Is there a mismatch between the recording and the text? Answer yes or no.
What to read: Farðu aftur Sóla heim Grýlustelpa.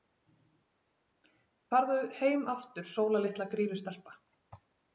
yes